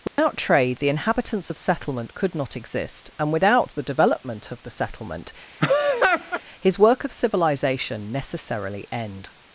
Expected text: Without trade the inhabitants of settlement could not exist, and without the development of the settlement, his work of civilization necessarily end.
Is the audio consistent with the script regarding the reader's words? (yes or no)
yes